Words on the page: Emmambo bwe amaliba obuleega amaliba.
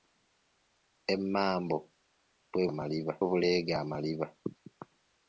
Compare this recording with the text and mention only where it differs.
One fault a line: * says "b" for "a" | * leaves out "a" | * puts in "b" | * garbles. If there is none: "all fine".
all fine